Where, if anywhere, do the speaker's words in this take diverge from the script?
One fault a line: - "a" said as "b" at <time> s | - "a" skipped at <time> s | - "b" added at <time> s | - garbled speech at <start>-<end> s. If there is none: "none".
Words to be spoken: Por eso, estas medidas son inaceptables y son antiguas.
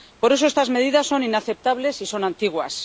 none